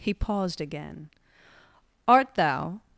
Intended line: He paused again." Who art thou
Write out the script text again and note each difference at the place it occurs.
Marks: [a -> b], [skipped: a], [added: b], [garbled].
He paused again." [skipped: Who] art thou